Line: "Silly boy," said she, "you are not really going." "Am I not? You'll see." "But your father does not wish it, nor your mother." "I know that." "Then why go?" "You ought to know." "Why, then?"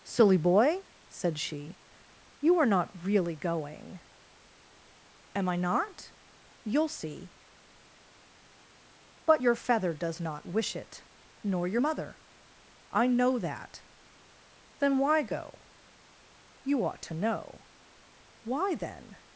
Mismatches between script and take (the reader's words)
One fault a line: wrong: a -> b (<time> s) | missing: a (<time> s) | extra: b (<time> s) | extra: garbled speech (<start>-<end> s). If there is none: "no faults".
wrong: father -> feather (9.6 s)